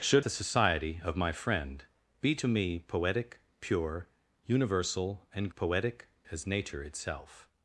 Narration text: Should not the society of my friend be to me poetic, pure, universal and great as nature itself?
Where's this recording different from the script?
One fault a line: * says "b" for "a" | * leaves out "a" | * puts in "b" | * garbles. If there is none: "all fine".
* leaves out "not"
* says "poetic" for "great"